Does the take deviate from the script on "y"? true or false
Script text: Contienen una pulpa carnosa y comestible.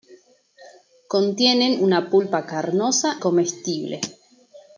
true